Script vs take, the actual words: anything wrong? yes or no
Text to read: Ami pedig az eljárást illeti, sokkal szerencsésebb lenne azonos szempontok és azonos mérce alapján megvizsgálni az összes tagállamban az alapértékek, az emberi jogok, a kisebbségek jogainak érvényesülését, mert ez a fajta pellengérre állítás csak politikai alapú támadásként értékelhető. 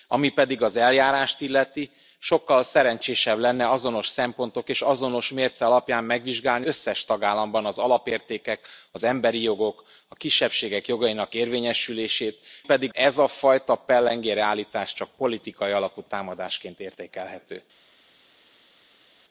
yes